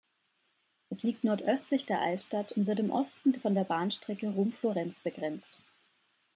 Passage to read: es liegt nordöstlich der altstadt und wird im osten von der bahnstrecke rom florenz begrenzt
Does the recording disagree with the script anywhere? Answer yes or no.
no